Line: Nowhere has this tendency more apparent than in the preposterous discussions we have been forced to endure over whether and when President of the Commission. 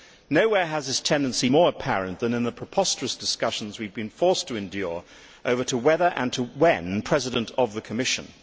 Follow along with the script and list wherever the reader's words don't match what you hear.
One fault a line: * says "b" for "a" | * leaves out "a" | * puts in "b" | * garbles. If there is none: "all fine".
all fine